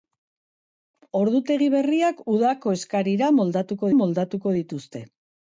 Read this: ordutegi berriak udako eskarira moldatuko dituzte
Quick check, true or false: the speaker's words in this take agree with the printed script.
false